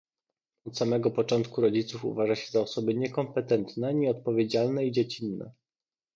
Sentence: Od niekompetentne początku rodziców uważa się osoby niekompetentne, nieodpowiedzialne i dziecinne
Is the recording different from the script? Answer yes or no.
yes